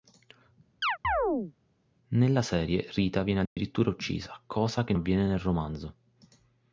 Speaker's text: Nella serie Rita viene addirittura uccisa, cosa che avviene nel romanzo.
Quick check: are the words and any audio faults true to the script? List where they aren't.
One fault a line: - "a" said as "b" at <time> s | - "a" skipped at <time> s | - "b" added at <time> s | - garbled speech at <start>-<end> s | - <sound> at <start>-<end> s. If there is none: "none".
- chirp at 0.8-1.5 s
- dropout at 3.5-3.6 s